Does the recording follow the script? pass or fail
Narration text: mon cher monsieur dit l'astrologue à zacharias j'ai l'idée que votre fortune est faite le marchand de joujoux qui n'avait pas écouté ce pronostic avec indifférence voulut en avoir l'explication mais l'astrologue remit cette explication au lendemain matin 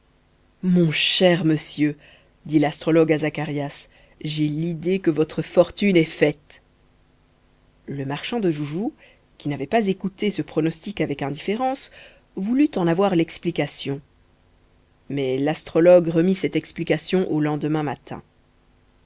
pass